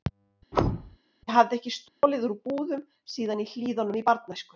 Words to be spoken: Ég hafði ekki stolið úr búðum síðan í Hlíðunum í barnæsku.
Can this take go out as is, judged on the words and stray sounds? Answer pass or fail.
fail